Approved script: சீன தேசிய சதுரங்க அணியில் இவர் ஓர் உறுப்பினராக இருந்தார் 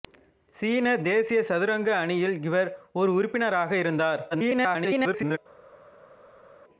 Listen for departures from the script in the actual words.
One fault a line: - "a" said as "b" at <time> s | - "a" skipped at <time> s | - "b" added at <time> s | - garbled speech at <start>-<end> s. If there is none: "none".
- garbled speech at 4.3-5.4 s